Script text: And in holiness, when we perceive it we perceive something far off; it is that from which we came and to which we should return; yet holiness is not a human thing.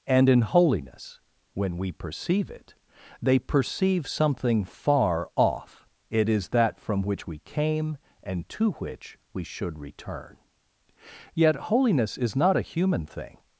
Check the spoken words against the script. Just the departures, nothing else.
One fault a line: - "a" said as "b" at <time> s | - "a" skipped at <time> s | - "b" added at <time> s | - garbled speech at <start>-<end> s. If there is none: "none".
- "we" said as "they" at 3.2 s